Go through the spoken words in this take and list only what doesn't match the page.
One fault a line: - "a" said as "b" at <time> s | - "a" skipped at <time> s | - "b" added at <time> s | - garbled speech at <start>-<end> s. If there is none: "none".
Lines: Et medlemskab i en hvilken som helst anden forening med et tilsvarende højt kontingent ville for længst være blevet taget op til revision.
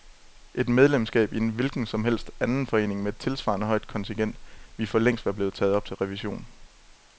none